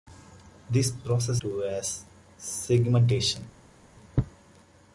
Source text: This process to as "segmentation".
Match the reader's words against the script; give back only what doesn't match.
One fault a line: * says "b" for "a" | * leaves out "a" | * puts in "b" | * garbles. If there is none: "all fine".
all fine